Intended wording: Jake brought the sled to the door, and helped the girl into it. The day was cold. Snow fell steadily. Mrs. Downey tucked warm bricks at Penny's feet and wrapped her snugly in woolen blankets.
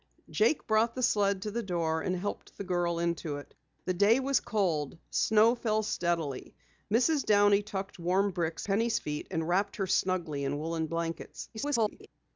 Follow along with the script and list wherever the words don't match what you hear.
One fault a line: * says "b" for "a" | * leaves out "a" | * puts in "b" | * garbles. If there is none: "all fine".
* leaves out "at"
* garbles